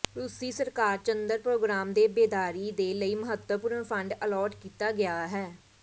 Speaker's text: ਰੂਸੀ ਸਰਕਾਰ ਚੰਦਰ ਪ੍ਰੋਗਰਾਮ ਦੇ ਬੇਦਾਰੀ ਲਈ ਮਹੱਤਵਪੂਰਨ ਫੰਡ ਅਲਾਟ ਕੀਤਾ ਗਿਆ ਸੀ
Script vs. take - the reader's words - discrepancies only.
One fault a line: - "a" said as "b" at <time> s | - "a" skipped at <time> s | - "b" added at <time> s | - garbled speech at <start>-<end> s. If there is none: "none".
- "ਦੇ" added at 2.7 s
- "ਸੀ" said as "ਹੈ" at 5.3 s